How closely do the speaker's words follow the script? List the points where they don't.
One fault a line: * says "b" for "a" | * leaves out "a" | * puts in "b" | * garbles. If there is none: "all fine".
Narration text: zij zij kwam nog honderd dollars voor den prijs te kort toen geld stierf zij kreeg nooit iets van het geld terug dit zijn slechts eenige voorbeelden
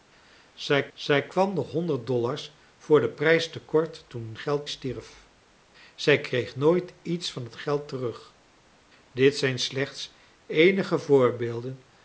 all fine